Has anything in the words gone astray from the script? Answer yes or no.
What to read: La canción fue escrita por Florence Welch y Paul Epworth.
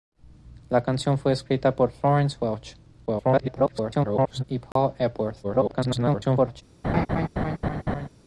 yes